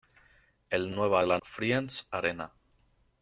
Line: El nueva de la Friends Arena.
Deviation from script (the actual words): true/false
false